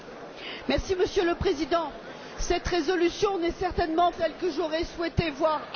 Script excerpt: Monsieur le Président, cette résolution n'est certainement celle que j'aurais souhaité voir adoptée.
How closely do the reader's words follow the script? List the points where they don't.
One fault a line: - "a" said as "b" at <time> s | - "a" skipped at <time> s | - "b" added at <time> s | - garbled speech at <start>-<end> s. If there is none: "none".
none